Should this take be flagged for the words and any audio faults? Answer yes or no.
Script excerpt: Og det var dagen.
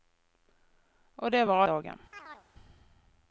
yes